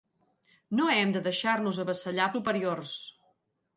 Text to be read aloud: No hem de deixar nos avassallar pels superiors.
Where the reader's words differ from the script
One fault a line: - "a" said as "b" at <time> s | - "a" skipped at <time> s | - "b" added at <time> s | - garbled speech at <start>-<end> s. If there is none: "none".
- "pels" skipped at 2.3 s